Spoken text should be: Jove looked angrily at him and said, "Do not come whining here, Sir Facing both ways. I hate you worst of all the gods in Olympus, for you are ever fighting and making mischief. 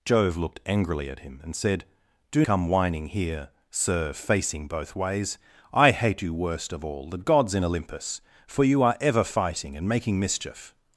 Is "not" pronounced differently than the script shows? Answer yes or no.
yes